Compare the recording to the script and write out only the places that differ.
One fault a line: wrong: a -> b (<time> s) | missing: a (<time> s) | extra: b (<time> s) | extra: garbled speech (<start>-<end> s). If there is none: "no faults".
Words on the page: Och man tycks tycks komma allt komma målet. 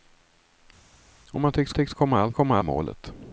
no faults